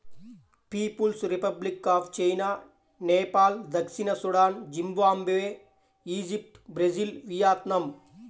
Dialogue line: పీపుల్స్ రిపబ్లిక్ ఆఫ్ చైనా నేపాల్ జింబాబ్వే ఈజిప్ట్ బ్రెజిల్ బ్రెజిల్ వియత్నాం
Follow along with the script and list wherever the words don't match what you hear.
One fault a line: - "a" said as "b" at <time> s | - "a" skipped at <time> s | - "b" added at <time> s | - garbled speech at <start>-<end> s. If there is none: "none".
- "దక్షిణ సూడాన్" added at 3.7 s
- "బ్రెజిల్" skipped at 7.1 s